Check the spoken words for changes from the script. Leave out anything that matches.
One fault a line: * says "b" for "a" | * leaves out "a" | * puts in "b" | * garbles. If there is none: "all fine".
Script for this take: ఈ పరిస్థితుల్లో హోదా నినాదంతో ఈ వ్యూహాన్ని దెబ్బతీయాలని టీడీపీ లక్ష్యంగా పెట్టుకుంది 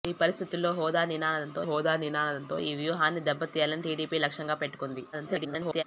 * puts in "హోదా నినాదంతో"
* garbles